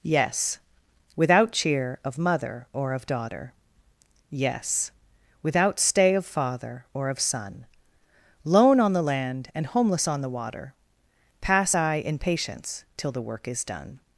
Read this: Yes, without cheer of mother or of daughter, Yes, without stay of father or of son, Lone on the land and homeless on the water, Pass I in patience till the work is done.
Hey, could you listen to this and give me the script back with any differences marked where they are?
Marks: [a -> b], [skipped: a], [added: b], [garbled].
Yes, without cheer of mother or of daughter, Yes, without stay of father or of son, Lone on the land and homeless on the water, Pass I in patience till the work is done.